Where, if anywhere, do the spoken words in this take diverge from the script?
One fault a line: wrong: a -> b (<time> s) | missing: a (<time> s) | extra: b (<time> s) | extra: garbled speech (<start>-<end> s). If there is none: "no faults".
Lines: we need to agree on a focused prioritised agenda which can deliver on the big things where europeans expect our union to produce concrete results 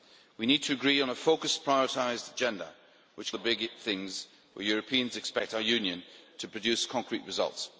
missing: can deliver on (3.3 s)